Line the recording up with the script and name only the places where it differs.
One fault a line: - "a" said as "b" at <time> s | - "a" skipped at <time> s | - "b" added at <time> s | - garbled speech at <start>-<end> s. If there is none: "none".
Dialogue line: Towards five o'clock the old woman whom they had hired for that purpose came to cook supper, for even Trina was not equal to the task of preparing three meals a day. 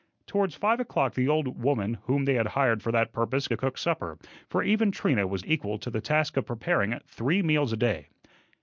- "came" skipped at 3.5 s
- "not" skipped at 5.4 s